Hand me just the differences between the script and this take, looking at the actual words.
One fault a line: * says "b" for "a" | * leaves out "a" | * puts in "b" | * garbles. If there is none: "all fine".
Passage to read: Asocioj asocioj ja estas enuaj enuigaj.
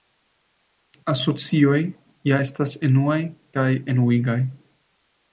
* leaves out "asocioj"
* puts in "kaj"